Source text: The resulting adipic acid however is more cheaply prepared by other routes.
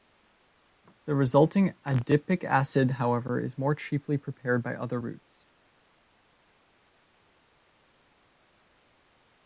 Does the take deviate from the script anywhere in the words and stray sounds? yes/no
no